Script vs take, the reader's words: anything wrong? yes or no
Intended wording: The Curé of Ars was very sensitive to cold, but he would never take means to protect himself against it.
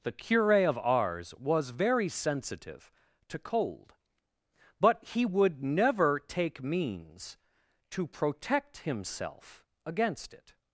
no